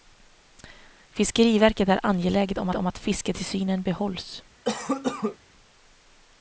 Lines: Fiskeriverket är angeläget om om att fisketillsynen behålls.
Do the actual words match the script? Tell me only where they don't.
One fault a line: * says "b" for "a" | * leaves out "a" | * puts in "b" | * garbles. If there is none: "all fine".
all fine